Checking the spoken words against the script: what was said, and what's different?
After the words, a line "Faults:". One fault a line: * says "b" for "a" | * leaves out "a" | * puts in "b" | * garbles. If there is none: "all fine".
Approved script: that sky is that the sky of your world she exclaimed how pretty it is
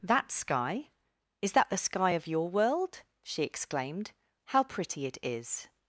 that sky is that the sky of your world she exclaimed how pretty it is
Faults:
all fine